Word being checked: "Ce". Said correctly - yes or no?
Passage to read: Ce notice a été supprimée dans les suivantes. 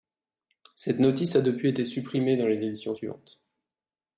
no